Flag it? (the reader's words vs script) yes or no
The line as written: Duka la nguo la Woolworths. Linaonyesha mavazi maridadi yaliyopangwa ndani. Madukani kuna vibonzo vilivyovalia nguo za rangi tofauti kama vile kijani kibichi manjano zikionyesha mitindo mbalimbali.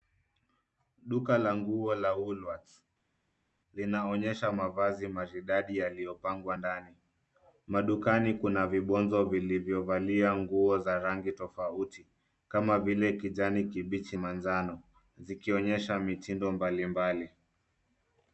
no